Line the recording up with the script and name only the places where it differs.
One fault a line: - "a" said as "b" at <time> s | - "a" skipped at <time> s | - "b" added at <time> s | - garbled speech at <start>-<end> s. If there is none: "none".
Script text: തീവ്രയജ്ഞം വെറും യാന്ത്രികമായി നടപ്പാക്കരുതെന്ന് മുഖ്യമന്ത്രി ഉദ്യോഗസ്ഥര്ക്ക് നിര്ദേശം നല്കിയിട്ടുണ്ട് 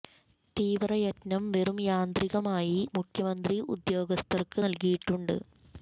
- "നടപ്പാക്കരുതെന്ന്" skipped at 2.7 s
- "നിര്ദേശം" skipped at 4.6 s